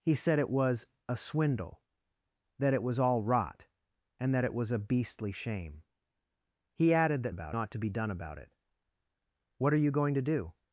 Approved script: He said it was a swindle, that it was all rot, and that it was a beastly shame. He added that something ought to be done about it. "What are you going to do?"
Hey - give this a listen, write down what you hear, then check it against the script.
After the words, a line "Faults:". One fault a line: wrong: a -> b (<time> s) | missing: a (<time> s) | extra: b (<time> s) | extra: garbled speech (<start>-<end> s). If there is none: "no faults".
He said it was a swindle, that it was all rot, and that it was a beastly shame. He added that about ought to be done about it. "What are you going to do?"
Faults:
wrong: something -> about (7.3 s)